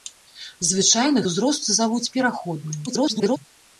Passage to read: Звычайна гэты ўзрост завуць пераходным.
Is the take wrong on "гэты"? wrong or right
wrong